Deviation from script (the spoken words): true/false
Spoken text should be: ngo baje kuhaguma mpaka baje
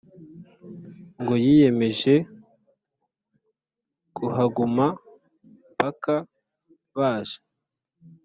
true